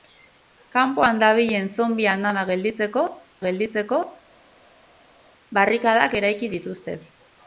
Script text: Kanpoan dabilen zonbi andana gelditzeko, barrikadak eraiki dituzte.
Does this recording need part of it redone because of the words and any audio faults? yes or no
yes